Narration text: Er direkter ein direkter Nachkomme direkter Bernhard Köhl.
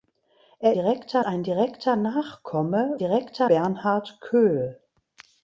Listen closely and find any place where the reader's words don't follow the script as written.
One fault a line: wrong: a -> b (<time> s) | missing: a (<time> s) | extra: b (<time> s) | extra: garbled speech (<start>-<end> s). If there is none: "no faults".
no faults